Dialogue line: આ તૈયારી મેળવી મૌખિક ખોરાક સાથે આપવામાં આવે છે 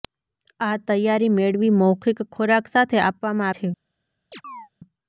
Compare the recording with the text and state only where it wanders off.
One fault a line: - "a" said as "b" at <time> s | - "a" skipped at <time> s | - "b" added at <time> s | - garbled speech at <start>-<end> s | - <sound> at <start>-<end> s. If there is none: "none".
- "આવે" skipped at 3.5 s
- chirp at 4.3-4.7 s